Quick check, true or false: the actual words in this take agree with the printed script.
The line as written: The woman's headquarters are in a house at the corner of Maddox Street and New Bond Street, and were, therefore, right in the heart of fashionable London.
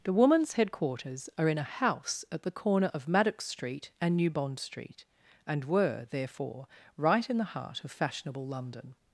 true